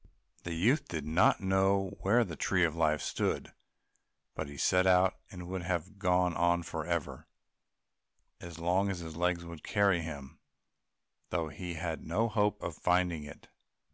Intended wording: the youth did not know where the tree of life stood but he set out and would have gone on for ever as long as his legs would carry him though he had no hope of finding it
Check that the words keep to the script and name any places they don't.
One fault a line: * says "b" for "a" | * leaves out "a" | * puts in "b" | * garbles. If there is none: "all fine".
all fine